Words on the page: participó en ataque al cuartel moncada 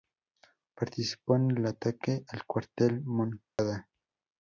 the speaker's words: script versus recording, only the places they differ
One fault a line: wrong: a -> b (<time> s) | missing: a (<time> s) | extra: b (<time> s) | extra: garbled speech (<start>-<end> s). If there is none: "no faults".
extra: el (1.5 s)